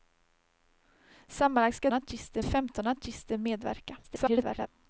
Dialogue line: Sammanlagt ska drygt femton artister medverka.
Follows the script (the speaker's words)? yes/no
no